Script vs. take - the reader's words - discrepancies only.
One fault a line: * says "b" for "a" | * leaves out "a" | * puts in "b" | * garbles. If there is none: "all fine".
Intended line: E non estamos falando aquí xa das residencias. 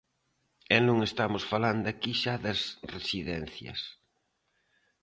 all fine